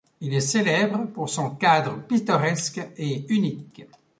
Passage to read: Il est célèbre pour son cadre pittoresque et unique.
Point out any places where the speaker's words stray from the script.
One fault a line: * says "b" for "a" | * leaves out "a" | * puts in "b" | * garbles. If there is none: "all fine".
all fine